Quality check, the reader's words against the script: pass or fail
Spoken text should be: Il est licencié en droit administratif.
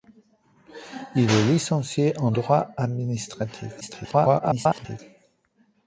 fail